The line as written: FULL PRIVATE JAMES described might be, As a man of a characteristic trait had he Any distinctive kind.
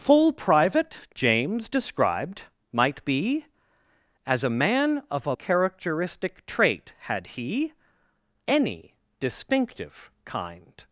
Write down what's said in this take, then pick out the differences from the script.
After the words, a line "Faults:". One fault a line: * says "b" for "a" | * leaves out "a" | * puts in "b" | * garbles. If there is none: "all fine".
FULL PRIVATE JAMES described might be, As a man of a characteristic trait had he Any distinctive kind.
Faults:
all fine